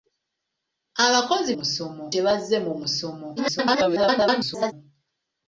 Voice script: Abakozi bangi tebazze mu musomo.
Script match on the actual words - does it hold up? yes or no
no